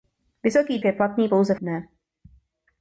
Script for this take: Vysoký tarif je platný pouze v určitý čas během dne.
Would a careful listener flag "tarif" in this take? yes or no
yes